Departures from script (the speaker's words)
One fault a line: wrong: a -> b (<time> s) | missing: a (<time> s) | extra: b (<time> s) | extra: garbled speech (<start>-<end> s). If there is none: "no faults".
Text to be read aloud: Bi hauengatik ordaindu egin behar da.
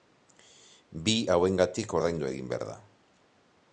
no faults